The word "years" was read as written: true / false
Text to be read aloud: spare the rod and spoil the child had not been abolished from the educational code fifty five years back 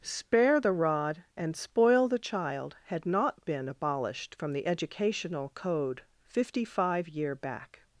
false